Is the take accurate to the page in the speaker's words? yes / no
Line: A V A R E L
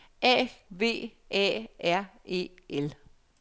yes